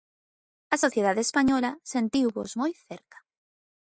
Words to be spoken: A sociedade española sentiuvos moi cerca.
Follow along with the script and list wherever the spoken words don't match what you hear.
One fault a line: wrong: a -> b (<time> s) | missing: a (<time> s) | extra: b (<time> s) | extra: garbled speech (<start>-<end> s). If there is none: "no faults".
no faults